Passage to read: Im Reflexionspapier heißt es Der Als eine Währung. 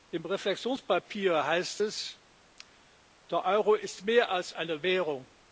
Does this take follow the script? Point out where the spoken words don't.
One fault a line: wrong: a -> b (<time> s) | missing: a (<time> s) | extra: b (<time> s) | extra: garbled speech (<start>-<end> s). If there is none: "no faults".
extra: Euro ist mehr (3.4 s)